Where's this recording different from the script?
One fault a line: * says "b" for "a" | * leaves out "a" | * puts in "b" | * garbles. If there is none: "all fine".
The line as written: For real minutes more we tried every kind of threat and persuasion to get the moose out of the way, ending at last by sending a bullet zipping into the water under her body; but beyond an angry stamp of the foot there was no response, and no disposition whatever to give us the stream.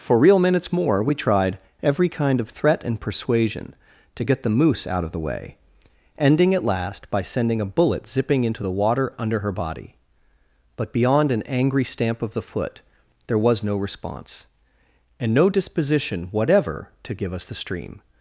all fine